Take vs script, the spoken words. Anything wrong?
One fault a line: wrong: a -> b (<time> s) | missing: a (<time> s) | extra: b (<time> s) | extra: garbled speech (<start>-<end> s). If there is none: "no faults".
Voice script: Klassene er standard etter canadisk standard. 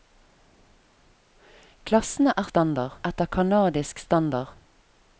no faults